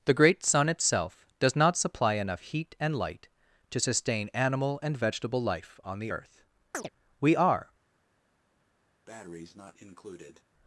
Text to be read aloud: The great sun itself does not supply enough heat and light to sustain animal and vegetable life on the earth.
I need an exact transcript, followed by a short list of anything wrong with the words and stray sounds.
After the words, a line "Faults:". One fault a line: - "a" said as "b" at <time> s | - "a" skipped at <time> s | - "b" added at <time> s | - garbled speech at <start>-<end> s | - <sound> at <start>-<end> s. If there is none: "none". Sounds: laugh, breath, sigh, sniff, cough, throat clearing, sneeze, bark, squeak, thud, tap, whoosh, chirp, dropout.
The great sun itself does not supply enough heat and light to sustain animal and vegetable life on the earth. We are
Faults:
- chirp at 6.7-6.9 s
- "We are" added at 7.2 s
- breath at 9.1-10.4 s